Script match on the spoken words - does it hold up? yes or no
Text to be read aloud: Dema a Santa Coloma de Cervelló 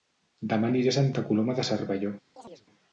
no